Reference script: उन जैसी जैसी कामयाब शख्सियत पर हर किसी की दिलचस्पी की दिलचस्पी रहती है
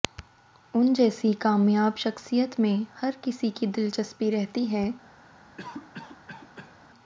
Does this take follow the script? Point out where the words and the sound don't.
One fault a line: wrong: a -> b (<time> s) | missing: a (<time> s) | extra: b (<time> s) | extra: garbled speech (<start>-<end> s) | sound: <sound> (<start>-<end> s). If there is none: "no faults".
missing: जैसी (1.3 s)
wrong: पर -> में (2.6 s)
missing: की दिलचस्पी (4.3 s)
sound: cough (5.6-6.8 s)